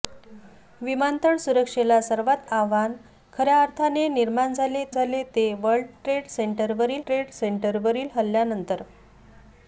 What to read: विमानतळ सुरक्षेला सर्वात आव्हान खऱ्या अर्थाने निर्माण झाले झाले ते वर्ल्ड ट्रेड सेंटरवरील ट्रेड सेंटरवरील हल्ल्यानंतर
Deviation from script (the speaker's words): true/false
false